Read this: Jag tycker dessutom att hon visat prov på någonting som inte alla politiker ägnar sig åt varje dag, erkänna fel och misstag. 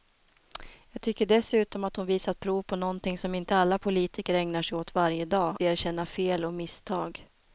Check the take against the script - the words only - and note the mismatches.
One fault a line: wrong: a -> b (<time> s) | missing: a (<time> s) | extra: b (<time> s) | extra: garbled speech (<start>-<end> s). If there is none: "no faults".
no faults